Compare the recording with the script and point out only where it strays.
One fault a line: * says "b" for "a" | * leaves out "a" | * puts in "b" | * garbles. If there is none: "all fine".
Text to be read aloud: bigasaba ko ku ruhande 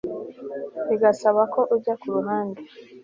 * puts in "ujya"